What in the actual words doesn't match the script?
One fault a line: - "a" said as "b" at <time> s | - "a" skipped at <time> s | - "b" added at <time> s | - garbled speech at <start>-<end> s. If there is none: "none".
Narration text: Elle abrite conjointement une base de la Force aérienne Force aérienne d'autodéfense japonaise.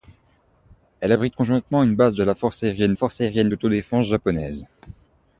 none